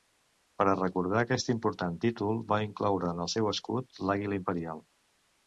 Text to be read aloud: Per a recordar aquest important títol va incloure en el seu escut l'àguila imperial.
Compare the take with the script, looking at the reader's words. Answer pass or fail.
pass